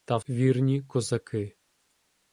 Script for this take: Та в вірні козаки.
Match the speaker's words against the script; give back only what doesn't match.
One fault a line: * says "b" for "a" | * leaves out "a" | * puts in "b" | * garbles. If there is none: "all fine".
all fine